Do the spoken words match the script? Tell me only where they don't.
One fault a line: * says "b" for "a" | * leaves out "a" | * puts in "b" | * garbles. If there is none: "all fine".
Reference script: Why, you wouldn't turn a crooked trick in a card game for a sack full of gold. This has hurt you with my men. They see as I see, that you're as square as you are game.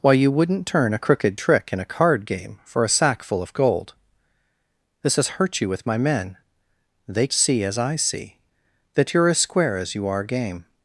all fine